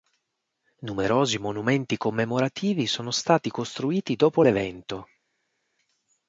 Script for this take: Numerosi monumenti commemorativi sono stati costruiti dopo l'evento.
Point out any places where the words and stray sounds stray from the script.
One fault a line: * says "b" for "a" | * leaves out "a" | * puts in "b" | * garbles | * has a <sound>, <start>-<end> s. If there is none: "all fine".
all fine